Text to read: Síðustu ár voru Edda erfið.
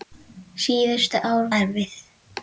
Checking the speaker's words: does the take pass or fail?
fail